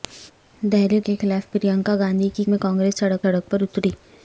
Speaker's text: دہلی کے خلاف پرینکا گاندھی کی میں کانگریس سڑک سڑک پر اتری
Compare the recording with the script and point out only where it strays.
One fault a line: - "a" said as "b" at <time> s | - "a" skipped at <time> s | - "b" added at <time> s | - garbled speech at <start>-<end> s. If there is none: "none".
none